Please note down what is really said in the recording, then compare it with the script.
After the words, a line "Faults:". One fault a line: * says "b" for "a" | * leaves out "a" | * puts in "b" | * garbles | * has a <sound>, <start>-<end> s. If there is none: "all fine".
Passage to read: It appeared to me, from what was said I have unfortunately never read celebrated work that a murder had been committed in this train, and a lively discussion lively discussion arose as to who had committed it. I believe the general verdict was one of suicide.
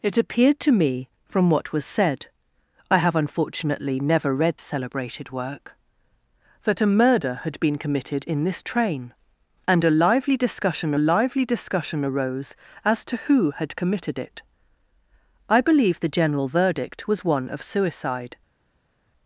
It appeared to me, from what was said I have unfortunately never read celebrated work that a murder had been committed in this train, and a lively discussion lively discussion arose as to who had committed it. I believe the general verdict was one of suicide.
Faults:
all fine